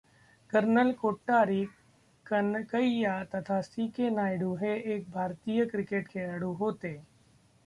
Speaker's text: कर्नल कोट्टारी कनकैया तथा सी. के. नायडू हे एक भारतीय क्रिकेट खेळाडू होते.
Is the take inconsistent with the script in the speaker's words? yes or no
no